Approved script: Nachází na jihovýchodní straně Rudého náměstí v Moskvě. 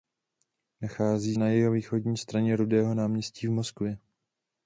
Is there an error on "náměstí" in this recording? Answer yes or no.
no